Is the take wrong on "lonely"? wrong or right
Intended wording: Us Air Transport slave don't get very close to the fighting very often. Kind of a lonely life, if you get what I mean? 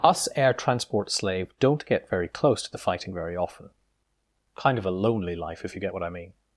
right